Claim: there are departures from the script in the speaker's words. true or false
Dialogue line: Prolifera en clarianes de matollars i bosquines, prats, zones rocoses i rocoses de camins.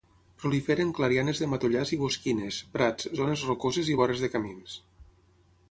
true